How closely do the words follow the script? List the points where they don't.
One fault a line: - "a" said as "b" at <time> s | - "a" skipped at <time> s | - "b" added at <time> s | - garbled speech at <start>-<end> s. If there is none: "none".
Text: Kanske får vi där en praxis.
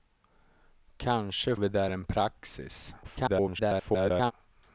- "får" skipped at 1.6 s
- garbled speech at 3.0-4.3 s